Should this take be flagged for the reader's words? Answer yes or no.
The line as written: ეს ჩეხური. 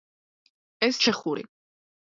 no